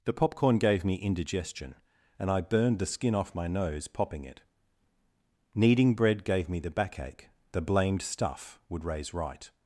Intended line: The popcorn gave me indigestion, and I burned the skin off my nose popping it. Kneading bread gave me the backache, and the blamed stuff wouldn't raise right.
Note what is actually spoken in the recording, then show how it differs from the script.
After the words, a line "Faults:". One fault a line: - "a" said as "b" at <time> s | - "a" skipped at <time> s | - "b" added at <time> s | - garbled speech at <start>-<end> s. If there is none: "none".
The popcorn gave me indigestion, and I burned the skin off my nose popping it. Kneading bread gave me the backache, the blamed stuff would raise right.
Faults:
- "and" skipped at 7.3 s
- "wouldn't" said as "would" at 8.7 s